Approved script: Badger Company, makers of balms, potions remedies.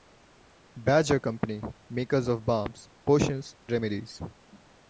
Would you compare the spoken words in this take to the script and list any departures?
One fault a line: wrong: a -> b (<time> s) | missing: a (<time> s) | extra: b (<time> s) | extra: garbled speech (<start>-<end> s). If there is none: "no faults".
no faults